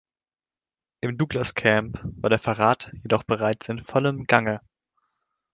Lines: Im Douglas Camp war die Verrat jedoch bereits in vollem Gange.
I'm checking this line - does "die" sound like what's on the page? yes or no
no